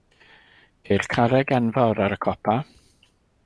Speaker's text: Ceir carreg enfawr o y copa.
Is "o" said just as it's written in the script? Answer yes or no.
no